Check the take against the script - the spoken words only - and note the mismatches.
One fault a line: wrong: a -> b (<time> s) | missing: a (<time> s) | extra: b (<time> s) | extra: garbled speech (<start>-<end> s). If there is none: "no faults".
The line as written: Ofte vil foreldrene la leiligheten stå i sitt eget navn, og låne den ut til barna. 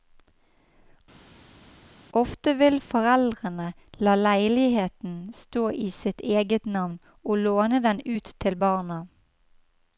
no faults